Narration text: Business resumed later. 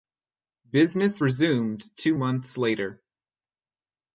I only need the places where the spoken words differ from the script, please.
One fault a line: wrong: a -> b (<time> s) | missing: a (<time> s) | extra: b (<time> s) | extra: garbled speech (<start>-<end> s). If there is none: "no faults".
extra: two months (2.0 s)